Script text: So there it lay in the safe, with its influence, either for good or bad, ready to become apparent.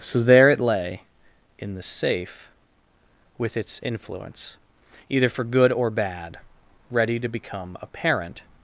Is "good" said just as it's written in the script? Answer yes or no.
yes